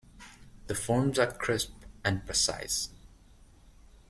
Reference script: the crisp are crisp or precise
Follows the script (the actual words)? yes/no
no